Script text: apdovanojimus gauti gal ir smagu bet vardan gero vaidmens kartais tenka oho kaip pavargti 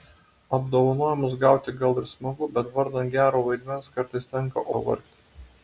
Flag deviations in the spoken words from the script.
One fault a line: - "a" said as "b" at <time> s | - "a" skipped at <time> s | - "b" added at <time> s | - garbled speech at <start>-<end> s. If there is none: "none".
- "oho kaip" skipped at 4.7 s